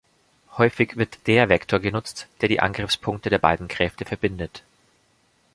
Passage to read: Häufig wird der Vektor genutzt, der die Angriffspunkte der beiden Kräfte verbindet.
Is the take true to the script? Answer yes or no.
yes